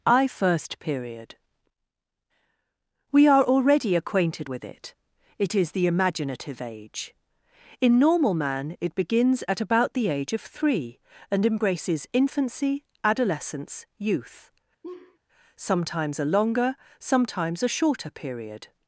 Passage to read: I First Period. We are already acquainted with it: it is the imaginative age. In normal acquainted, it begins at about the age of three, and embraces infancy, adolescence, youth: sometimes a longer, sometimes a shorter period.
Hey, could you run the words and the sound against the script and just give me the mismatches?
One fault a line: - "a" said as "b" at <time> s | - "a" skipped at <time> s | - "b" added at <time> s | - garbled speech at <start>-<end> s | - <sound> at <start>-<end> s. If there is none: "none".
- "acquainted" said as "man" at 8.3 s
- laugh at 14.8-15.2 s